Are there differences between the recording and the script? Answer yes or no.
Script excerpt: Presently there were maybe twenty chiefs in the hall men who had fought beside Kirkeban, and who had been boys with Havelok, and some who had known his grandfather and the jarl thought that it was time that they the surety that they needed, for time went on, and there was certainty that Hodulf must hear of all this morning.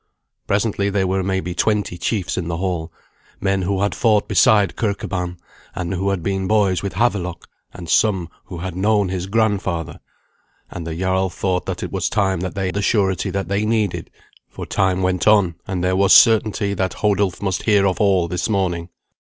no